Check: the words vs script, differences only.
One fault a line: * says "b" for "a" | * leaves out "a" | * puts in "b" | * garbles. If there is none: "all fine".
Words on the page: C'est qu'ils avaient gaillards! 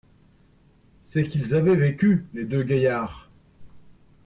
* puts in "vécu les deux"